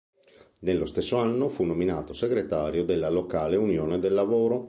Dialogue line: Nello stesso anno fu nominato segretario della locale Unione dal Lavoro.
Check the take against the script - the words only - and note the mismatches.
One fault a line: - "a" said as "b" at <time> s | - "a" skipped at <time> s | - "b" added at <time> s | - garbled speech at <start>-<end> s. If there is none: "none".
- "dal" said as "del" at 4.0 s